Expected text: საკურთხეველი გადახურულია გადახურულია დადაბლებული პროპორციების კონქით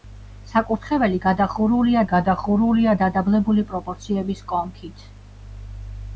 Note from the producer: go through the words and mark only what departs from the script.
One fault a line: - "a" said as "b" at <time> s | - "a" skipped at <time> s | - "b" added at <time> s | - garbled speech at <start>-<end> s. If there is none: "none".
none